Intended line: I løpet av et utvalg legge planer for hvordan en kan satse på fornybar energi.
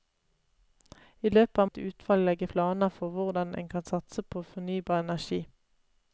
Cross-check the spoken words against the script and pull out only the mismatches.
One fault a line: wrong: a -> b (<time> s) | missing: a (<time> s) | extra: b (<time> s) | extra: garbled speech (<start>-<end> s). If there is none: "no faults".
no faults